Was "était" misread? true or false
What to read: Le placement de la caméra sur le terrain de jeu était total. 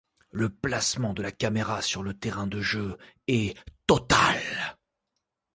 true